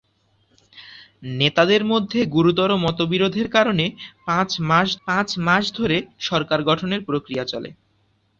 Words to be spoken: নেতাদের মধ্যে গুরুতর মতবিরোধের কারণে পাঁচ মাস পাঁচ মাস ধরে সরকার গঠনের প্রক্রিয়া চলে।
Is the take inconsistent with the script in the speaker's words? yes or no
no